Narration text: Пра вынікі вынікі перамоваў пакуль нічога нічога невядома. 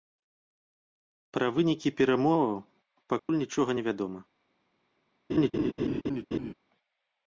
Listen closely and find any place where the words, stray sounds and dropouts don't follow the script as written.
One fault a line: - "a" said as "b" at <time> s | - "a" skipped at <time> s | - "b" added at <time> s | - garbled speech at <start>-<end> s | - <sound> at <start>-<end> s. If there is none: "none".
- "вынікі" skipped at 1.9 s
- dropout at 3.2-3.3 s
- "нічога" skipped at 3.7 s
- laugh at 5.3-6.5 s